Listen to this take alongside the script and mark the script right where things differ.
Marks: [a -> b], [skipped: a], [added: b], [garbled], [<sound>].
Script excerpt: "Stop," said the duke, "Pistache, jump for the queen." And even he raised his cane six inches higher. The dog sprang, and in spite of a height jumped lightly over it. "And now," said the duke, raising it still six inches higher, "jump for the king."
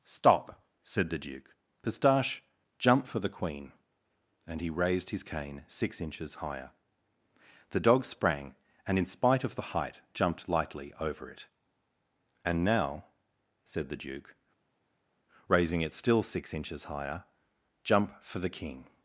"Stop," said the duke, "Pistache, jump for the queen." And [skipped: even] he raised his cane six inches higher. The dog sprang, and in spite of [a -> the] height jumped lightly over it. "And now," said the duke, raising it still six inches higher, "jump for the king."